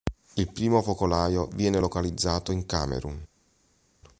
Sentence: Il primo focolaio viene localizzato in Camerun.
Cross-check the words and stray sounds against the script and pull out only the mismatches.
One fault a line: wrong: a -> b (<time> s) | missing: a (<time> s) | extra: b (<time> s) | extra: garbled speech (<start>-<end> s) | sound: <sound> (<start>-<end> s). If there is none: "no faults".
no faults